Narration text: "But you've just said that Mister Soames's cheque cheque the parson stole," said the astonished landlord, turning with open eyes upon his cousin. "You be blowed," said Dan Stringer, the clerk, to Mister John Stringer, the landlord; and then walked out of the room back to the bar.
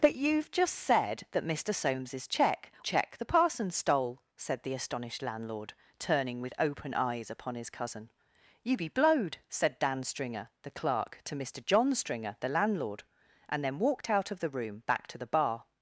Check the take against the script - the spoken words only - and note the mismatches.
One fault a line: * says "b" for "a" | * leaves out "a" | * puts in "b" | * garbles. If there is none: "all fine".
all fine